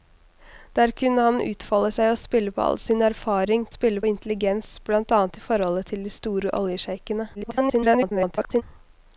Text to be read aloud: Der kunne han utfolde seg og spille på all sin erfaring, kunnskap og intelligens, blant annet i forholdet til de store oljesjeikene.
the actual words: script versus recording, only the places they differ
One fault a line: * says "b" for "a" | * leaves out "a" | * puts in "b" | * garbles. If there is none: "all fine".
* says "spille" for "kunnskap"
* garbles